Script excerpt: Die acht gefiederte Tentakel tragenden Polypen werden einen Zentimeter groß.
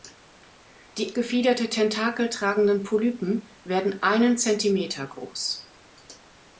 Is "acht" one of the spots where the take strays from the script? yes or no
yes